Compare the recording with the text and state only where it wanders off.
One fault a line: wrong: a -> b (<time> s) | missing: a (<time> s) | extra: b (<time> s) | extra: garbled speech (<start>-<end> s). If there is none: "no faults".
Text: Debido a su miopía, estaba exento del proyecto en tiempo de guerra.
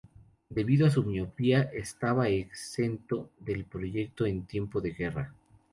no faults